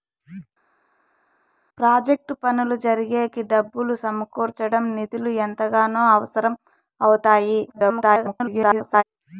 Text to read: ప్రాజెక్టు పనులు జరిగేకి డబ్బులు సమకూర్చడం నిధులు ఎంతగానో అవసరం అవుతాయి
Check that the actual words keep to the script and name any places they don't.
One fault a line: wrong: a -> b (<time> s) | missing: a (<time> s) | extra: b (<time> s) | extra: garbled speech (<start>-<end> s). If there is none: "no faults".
extra: garbled speech (7.7-9.0 s)